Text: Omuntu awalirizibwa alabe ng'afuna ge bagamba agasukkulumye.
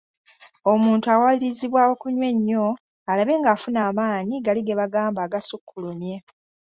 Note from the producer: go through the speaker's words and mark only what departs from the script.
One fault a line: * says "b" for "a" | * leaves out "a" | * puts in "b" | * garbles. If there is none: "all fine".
* puts in "okunywa ennyo"
* puts in "amaanyi gali"